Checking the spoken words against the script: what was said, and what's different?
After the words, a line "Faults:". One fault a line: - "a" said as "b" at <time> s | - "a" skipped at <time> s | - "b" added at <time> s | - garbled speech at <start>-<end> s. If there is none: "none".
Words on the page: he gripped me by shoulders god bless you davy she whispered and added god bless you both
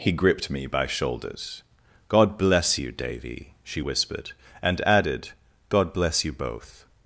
he gripped me by shoulders god bless you davy she whispered and added god bless you both
Faults:
none